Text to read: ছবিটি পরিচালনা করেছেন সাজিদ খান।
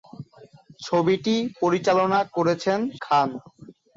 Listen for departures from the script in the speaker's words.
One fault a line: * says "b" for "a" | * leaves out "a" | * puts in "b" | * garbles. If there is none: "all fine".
* leaves out "সাজিদ"